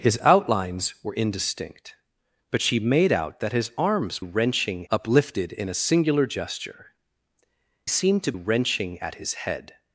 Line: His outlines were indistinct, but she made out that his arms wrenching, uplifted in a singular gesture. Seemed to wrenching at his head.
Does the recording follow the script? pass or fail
pass